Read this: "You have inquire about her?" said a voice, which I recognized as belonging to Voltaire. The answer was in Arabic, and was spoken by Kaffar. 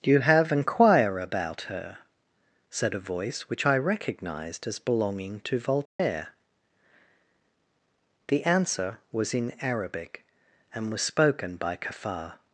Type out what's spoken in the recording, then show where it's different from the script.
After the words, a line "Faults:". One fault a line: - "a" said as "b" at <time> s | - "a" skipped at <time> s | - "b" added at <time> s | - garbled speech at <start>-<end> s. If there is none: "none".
"You have inquire about her?" said a voice, which I recognized as belonging to Voltaire. The answer was in Arabic, and was spoken by Kaffar.
Faults:
none